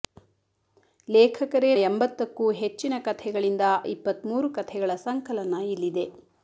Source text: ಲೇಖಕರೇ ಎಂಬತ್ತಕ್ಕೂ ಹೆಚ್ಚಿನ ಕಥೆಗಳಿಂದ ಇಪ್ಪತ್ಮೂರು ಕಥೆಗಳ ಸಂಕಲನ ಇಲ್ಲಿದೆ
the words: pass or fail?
pass